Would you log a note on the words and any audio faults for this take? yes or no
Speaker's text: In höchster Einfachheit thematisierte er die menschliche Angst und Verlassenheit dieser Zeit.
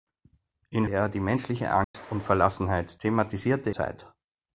yes